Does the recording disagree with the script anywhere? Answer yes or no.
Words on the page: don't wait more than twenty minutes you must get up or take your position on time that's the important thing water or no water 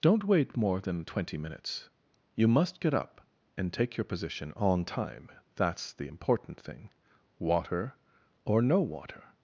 yes